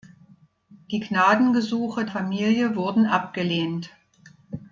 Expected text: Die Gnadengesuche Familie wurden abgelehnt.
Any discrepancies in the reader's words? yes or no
no